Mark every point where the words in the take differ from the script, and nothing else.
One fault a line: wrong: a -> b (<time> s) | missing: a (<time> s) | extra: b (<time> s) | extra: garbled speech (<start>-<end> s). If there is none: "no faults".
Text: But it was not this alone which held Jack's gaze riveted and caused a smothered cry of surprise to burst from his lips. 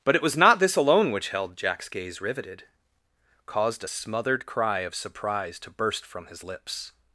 missing: and (2.6 s)